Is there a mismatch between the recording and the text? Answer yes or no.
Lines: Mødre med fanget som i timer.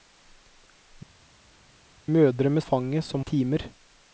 no